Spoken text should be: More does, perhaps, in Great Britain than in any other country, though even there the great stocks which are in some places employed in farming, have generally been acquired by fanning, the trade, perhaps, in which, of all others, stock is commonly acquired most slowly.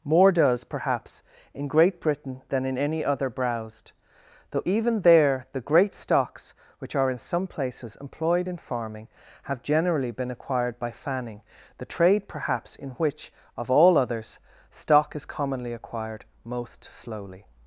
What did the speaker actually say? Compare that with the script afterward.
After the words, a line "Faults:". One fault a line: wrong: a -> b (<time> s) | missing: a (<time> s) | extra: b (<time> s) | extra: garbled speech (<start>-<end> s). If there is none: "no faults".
More does, perhaps, in Great Britain than in any other browsed, though even there the great stocks which are in some places employed in farming, have generally been acquired by fanning, the trade, perhaps, in which, of all others, stock is commonly acquired most slowly.
Faults:
wrong: country -> browsed (3.3 s)